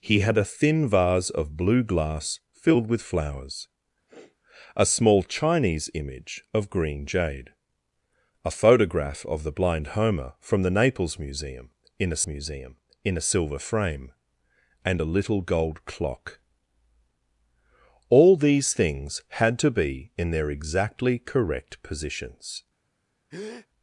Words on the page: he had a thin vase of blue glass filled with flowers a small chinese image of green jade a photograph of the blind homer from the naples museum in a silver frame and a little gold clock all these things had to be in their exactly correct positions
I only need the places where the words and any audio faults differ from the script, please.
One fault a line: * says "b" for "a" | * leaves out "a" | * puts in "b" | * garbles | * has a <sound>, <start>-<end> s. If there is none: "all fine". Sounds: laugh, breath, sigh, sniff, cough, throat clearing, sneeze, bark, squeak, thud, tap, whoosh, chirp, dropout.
* has a sniff, 4.1-4.4 s
* puts in "museum in a"
* has a breath, 23.3-23.7 s